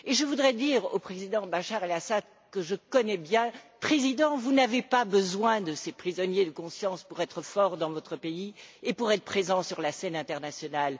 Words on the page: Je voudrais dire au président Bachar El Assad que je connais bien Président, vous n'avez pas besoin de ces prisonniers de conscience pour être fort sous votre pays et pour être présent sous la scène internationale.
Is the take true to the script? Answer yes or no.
no